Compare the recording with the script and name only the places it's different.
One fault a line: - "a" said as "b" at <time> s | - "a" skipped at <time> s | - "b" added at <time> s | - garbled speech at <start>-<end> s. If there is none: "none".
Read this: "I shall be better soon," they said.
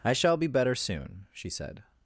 - "they" said as "she" at 1.3 s